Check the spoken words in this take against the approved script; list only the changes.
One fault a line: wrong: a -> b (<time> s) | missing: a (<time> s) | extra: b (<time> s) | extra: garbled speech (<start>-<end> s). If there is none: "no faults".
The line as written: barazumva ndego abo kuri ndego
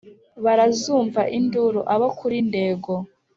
wrong: ndego -> induru (1.4 s)